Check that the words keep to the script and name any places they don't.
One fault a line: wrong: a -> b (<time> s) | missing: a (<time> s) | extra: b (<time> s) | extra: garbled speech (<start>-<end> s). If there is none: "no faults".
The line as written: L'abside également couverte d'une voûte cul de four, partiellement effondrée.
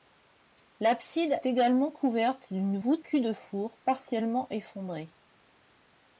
no faults